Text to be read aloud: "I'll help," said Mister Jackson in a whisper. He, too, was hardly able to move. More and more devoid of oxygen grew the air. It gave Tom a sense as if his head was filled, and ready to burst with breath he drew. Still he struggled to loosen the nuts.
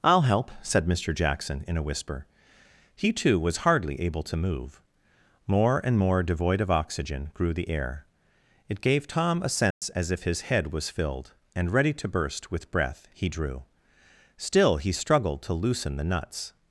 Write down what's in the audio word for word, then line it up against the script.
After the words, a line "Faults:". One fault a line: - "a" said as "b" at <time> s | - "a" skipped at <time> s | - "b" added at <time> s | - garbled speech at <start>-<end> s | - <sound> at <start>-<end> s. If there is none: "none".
"I'll help," said Mister Jackson in a whisper. He, too, was hardly able to move. More and more devoid of oxygen grew the air. It gave Tom a sense as if his head was filled, and ready to burst with breath he drew. Still he struggled to loosen the nuts.
Faults:
- dropout at 9.7-9.8 s